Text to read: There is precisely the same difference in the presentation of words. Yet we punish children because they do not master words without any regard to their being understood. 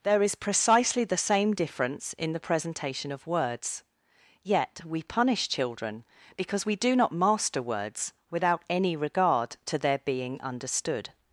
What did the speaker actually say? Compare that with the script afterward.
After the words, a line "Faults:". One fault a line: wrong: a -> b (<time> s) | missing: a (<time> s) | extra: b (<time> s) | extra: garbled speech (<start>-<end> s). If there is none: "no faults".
There is precisely the same difference in the presentation of words. Yet we punish children because we do not master words without any regard to their being understood.
Faults:
wrong: they -> we (6.6 s)